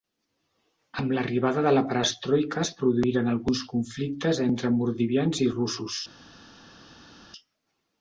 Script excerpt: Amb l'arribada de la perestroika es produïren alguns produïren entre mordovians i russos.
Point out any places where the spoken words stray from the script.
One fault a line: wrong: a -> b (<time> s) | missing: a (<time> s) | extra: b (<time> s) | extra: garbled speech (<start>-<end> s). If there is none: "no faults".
wrong: produïren -> conflictes (3.7 s)